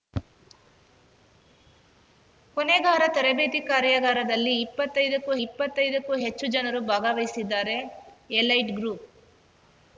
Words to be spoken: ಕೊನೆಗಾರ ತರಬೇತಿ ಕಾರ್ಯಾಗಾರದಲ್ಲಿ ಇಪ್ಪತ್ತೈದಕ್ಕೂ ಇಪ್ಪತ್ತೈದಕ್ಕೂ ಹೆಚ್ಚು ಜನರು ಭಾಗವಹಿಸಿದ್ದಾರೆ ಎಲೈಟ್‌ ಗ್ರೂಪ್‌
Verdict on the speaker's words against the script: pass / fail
pass